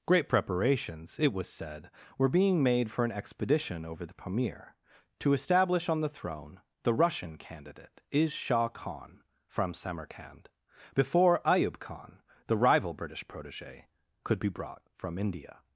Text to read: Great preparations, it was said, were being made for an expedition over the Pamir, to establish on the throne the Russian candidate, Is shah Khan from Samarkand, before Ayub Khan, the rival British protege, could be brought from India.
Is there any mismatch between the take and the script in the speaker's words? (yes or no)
no